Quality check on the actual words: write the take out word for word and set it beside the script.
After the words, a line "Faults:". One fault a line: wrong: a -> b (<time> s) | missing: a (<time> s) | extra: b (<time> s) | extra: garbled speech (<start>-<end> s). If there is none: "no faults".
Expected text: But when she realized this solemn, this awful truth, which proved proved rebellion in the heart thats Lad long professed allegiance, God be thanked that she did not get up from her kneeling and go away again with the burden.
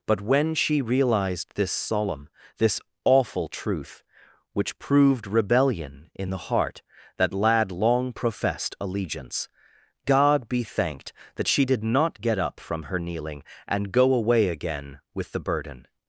But when she realized this solemn, this awful truth, which proved rebellion in the heart that Lad long professed allegiance, God be thanked that she did not get up from her kneeling and go away again with the burden.
Faults:
missing: proved (5.3 s)
wrong: thats -> that (7.2 s)